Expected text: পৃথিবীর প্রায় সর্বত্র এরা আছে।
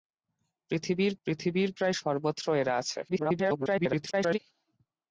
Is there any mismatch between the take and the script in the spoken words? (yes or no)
yes